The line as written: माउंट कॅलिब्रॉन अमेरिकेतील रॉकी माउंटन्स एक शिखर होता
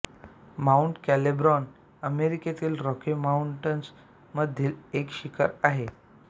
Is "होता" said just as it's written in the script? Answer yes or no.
no